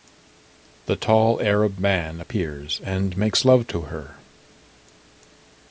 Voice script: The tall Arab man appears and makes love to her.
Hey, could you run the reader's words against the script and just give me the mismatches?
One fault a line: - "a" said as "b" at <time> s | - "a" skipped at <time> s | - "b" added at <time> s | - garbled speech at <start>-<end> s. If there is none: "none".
none